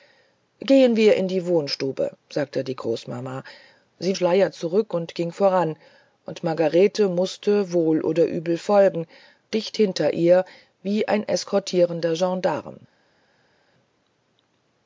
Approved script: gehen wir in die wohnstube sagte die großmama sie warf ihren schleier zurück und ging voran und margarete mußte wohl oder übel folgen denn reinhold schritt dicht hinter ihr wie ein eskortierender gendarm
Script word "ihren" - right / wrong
wrong